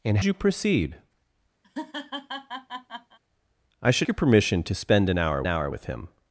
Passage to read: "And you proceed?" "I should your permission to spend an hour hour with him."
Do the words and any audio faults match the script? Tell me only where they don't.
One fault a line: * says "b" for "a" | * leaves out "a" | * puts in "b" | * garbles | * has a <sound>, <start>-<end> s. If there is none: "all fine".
* has a laugh, 1.6-3.2 s